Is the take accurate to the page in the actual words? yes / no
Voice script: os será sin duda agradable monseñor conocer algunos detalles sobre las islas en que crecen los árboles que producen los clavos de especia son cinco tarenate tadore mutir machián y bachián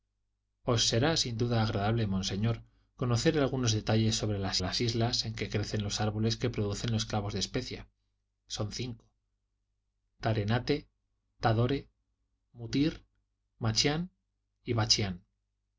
no